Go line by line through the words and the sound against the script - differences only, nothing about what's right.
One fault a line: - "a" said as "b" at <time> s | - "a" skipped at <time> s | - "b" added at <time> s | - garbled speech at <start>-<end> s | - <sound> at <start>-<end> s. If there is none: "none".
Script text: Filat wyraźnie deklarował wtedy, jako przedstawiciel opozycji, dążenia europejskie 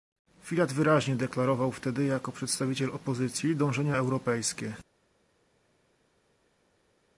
none